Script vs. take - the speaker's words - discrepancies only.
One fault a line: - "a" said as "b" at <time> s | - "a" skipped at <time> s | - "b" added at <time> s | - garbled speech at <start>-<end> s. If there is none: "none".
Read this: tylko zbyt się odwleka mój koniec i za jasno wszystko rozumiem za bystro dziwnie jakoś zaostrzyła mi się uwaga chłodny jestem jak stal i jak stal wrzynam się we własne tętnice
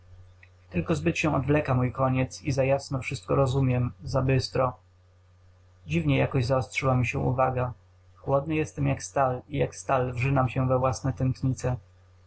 none